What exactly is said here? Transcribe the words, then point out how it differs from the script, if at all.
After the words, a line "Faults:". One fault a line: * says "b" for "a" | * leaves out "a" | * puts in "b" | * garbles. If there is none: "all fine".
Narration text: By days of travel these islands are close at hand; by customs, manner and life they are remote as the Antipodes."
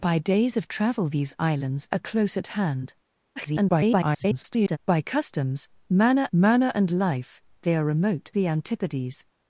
By days of travel these islands are close at hand; [garbled] by customs, manner manner and life they are remote the Antipodes."
Faults:
* garbles
* puts in "manner"
* leaves out "as"